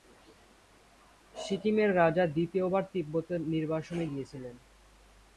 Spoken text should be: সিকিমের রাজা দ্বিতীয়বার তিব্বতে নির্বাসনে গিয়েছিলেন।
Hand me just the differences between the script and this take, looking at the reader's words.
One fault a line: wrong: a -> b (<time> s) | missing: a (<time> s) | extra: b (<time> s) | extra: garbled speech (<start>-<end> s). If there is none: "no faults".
no faults